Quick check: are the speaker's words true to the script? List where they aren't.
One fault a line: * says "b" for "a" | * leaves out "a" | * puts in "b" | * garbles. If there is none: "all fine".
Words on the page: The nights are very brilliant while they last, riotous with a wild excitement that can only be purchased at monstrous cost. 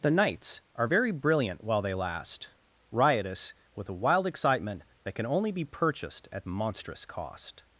all fine